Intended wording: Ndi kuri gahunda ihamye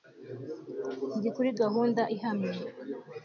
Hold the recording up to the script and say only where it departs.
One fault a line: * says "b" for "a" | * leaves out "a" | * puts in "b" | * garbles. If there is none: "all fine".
all fine